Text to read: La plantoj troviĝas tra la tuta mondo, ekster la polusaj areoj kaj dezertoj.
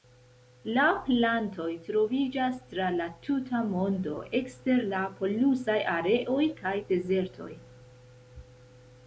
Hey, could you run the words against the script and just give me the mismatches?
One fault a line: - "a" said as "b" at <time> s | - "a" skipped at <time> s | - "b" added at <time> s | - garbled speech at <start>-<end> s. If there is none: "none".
none